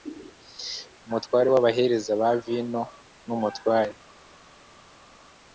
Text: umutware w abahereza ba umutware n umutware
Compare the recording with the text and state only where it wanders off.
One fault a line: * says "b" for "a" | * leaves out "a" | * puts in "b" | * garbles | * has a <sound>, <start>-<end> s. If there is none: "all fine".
* says "vino" for "umutware"